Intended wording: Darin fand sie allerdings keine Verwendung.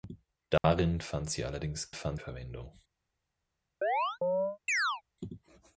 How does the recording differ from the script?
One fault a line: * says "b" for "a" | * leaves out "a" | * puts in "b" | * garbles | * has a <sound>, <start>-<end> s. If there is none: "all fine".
* has a dropout, 0.6-0.6 s
* says "fand" for "keine"
* has a chirp, 3.8-5.0 s